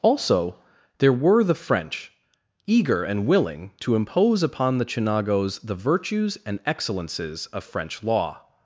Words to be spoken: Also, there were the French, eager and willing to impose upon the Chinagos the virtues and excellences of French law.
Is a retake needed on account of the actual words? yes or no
no